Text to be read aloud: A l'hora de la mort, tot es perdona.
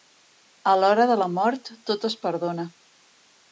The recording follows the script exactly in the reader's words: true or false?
true